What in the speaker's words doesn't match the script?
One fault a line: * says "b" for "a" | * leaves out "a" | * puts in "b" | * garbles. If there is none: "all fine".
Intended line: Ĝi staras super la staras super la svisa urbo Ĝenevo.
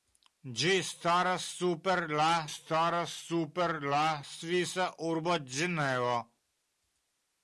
all fine